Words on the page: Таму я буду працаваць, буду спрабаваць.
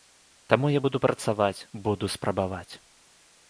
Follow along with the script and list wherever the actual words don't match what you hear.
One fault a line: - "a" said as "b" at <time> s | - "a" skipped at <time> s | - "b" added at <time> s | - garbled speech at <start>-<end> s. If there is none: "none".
none